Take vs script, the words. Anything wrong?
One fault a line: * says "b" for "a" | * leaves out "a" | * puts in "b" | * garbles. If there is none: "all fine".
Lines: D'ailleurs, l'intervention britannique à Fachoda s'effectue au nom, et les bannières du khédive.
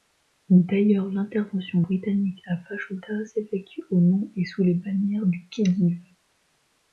* puts in "sous"